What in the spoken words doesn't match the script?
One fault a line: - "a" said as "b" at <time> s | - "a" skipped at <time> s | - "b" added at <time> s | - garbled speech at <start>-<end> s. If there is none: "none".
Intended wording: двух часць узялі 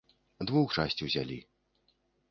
none